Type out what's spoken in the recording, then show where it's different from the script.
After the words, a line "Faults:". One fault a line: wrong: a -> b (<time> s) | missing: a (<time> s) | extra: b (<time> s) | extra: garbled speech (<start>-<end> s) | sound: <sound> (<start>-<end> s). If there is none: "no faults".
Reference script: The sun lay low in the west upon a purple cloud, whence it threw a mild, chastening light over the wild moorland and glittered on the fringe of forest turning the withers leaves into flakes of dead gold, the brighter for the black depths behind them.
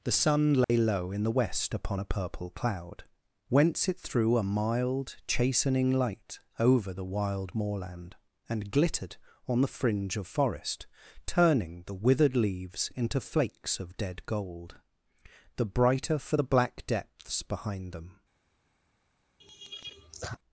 The sun lay low in the west upon a purple cloud, whence it threw a mild, chastening light over the wild moorland and glittered on the fringe of forest turning the withered leaves into flakes of dead gold, the brighter for the black depths behind them.
Faults:
sound: dropout (0.6-0.7 s)
wrong: withers -> withered (11.9 s)
sound: laugh (19.4-20.4 s)